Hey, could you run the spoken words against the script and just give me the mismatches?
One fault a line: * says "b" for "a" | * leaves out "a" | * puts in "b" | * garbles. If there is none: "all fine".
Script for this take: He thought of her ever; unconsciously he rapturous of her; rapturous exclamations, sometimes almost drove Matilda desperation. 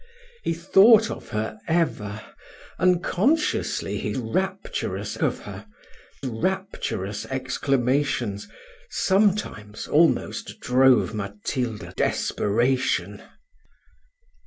all fine